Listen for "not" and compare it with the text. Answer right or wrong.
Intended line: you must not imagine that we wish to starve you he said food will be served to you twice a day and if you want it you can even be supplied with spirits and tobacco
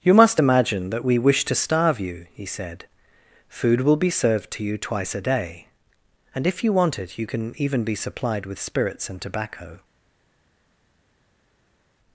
wrong